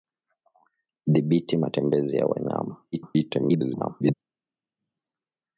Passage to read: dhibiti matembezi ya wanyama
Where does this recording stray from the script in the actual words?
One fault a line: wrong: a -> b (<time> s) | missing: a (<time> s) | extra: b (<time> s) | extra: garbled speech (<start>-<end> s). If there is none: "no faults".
extra: garbled speech (2.9-4.1 s)